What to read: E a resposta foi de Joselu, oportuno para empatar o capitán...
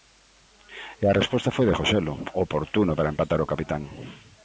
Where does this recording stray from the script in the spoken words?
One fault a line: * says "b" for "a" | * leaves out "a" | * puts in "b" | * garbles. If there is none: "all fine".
all fine